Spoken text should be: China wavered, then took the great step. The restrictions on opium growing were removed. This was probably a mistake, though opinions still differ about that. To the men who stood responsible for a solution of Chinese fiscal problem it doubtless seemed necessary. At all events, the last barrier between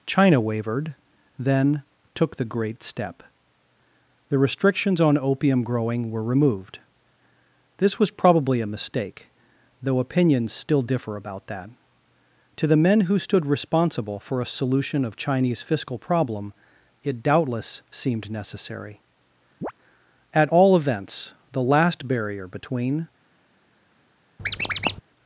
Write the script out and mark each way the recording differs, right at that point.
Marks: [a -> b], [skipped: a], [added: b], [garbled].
China wavered, then took the great step. The restrictions on opium growing were removed. This was probably a mistake, though opinions still differ about that. To the men who stood responsible for a solution of Chinese fiscal problem it doubtless seemed necessary. At all events, the last barrier between